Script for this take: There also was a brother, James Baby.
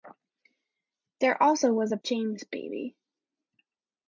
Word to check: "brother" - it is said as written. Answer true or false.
false